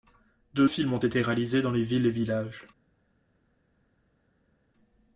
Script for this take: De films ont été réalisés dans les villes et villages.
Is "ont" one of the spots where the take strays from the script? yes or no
no